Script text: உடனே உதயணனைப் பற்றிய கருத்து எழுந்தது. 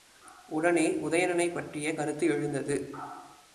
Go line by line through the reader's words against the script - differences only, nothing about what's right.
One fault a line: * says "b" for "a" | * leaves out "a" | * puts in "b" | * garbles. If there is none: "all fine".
all fine